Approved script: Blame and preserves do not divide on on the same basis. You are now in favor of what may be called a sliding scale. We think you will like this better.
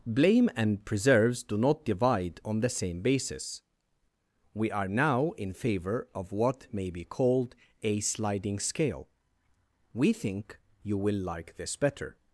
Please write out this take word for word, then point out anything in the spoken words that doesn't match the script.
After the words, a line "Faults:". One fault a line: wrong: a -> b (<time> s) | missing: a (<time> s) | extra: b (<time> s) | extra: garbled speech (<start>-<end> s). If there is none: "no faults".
Blame and preserves do not divide on the same basis. We are now in favor of what may be called a sliding scale. We think you will like this better.
Faults:
missing: on (2.6 s)
wrong: You -> We (4.5 s)